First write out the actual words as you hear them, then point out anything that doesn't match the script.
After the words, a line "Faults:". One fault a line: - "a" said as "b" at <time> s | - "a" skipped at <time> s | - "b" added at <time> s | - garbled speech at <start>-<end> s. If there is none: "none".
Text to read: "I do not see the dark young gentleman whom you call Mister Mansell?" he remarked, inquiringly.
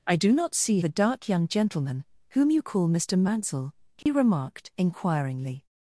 "I do not see the dark young gentleman whom you call Mister Mansell?" he remarked, inquiringly.
Faults:
none